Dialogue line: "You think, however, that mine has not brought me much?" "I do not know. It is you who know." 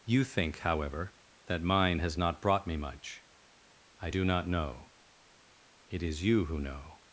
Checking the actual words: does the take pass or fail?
pass